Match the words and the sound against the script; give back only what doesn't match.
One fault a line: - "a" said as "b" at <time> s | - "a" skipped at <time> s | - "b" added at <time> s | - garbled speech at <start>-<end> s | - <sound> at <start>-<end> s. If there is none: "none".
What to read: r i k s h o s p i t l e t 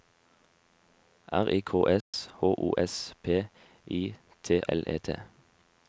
- dropout at 2.0-2.1 s